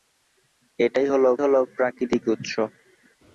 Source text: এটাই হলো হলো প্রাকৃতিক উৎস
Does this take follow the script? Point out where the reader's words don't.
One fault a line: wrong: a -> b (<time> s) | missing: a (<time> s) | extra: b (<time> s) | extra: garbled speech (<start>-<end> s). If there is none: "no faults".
no faults